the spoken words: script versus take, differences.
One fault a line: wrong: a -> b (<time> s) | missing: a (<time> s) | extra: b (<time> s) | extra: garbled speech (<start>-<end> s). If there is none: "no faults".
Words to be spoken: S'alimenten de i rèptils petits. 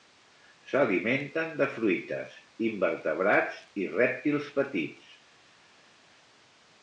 extra: fruites invertebrats (1.8 s)